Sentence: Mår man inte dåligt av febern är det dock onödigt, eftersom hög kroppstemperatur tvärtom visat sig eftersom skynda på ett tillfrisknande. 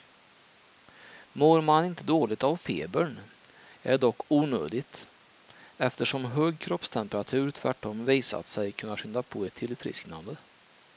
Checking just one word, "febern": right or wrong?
right